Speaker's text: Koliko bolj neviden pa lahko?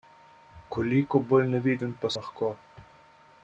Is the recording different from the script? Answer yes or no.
no